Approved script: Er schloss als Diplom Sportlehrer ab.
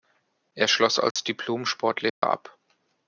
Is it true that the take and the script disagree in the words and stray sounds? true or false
true